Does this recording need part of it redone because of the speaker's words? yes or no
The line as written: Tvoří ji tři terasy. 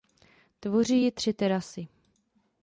no